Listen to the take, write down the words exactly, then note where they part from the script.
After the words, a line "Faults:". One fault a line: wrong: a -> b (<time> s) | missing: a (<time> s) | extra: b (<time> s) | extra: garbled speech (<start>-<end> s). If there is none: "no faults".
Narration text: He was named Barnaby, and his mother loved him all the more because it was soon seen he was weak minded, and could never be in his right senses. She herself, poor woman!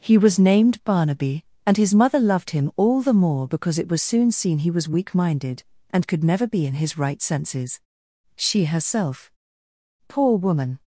He was named Barnaby, and his mother loved him all the more because it was soon seen he was weak minded, and could never be in his right senses. She herself, poor woman!
Faults:
no faults